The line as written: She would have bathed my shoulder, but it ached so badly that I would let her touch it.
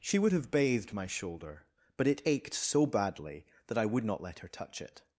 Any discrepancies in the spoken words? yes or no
yes